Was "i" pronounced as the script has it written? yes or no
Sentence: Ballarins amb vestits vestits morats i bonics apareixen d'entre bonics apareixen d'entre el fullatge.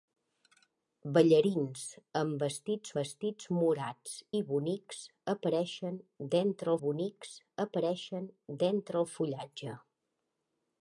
yes